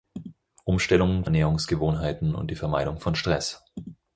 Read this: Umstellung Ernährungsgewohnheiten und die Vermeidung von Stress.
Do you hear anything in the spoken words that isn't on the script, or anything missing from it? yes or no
no